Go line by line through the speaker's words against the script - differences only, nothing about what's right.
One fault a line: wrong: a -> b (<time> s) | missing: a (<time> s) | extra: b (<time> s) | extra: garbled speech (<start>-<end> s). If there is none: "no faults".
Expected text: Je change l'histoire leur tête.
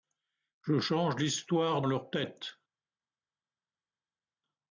no faults